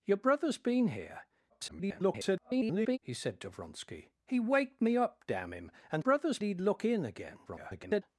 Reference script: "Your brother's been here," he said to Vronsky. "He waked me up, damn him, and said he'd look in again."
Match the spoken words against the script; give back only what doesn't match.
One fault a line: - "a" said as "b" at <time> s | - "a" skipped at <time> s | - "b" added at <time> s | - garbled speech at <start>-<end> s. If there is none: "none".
- garbled speech at 1.5-3.0 s
- "said" said as "brother's" at 6.0 s
- garbled speech at 7.5-8.0 s